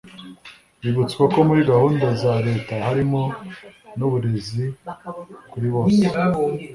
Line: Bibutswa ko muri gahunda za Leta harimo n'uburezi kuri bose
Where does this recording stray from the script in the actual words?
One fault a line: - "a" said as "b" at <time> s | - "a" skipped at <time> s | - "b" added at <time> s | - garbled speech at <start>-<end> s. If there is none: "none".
none